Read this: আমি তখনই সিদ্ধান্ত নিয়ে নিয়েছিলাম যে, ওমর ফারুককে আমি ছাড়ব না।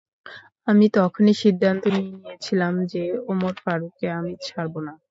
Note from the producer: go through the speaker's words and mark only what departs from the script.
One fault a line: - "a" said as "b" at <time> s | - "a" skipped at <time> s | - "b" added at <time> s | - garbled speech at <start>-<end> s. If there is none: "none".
none